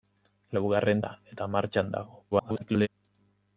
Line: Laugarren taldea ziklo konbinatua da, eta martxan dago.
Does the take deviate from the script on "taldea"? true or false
true